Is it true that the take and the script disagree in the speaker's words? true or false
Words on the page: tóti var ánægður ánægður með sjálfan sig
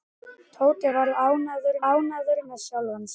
false